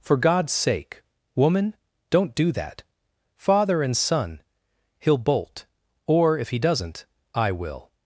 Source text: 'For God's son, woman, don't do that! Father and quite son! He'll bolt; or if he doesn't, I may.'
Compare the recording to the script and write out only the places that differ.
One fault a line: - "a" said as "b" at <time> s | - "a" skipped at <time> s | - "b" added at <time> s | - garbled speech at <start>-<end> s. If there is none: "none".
- "son" said as "sake" at 0.5 s
- "quite" skipped at 4.0 s
- "may" said as "will" at 7.5 s